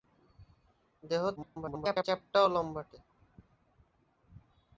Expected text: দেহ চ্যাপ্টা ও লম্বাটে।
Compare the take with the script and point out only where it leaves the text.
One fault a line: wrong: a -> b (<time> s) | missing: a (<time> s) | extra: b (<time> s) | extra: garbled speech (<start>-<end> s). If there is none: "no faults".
extra: garbled speech (1.4-2.0 s)